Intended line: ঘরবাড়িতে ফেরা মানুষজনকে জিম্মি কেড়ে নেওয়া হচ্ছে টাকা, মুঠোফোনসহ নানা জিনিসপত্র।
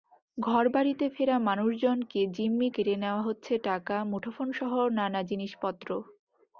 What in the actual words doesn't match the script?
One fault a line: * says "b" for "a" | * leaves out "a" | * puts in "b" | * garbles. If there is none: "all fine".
all fine